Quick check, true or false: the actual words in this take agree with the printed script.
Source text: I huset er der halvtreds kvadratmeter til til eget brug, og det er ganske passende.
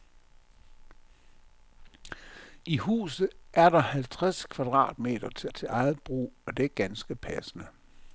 true